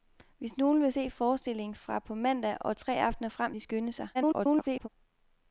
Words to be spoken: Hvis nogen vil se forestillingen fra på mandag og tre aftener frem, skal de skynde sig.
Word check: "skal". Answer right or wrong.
wrong